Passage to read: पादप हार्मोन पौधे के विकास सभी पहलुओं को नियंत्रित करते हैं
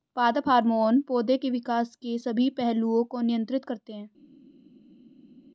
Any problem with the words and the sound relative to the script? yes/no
yes